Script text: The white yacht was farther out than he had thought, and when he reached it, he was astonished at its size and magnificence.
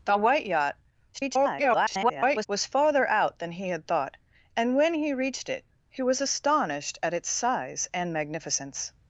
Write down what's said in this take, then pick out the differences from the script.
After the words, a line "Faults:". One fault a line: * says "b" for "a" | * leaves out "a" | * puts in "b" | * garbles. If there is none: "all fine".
The white yacht [garbled] was farther out than he had thought, and when he reached it, he was astonished at its size and magnificence.
Faults:
* garbles